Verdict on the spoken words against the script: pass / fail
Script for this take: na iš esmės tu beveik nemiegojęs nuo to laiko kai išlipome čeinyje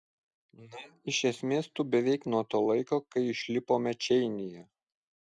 fail